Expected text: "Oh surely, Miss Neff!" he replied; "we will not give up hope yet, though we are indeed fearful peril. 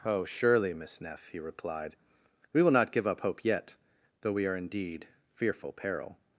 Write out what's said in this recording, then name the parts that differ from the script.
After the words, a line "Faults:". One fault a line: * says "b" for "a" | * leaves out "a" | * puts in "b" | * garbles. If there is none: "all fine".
"Oh surely, Miss Neff!" he replied; "we will not give up hope yet, though we are indeed fearful peril.
Faults:
all fine